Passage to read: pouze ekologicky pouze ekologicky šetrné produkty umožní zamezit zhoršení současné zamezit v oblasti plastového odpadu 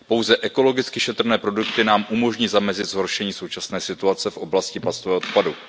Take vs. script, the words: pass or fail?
fail